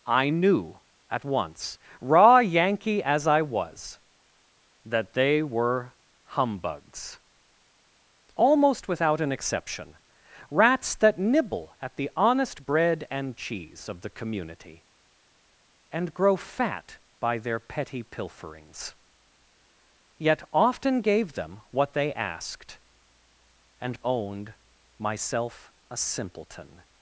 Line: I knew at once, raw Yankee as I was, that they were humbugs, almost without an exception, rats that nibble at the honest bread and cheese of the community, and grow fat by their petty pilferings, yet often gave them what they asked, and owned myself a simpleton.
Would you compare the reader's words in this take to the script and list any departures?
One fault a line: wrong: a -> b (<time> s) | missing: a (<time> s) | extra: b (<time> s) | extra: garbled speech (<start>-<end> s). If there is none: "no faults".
no faults